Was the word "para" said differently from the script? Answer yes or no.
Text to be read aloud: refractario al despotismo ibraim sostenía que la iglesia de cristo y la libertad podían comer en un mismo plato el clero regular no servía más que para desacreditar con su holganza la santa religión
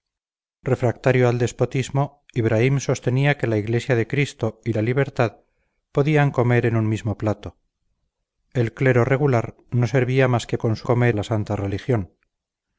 yes